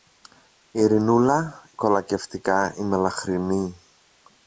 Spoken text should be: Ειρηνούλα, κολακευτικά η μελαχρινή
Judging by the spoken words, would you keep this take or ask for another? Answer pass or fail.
pass